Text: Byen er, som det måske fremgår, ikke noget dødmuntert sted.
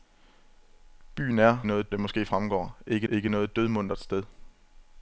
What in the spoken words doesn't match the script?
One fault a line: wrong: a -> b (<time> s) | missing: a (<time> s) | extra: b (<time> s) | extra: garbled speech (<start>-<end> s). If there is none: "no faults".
wrong: som -> noget (1.6 s)
extra: ikke (3.1 s)